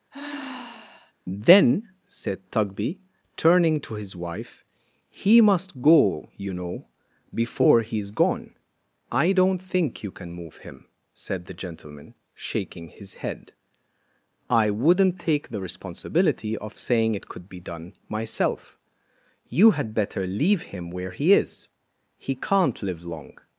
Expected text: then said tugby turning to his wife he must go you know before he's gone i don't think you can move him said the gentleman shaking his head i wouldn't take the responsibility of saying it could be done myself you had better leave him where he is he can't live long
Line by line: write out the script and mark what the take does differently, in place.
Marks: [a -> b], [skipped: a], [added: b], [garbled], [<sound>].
[sigh] then said tugby turning to his wife he must go you know before he's gone i don't think you can move him said the gentleman shaking his head i wouldn't take the responsibility of saying it could be done myself you had better leave him where he is he can't live long